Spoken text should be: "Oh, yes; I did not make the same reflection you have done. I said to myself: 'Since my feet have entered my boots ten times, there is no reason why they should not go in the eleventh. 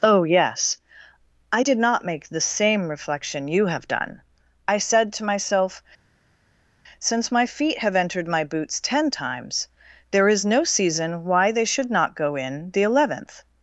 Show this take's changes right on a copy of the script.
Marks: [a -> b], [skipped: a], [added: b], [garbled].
"Oh, yes; I did not make the same reflection you have done. I said to myself: 'Since my feet have entered my boots ten times, there is no [reason -> season] why they should not go in the eleventh.